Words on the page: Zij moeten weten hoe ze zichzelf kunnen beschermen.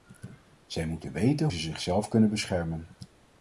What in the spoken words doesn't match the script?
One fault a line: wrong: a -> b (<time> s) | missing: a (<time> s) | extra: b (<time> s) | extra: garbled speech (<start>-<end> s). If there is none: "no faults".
missing: hoe (1.5 s)